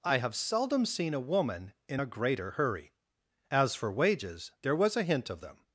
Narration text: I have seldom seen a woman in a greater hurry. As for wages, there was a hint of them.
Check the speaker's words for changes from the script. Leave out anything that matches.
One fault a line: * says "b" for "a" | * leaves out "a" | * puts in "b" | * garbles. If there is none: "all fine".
all fine